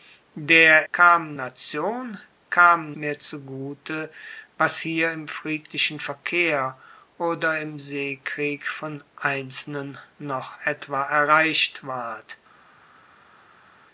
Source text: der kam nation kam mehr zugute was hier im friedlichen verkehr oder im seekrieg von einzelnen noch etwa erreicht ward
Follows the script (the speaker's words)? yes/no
yes